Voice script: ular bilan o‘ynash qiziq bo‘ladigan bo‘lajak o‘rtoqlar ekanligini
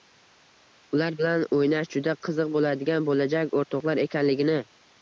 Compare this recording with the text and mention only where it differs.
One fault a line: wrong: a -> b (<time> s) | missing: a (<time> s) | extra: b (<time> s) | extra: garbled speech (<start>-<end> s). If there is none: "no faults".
extra: juda (2.0 s)